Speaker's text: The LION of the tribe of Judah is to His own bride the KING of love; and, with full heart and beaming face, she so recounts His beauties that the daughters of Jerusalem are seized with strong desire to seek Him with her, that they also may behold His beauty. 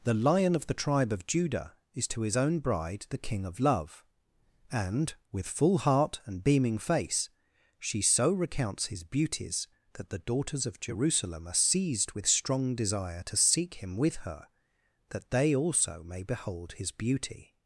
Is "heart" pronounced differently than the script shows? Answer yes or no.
no